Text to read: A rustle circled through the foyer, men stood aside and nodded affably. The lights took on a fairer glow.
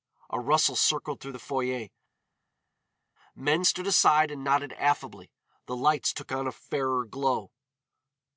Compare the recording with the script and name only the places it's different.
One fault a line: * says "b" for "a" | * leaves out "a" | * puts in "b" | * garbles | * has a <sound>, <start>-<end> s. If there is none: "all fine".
all fine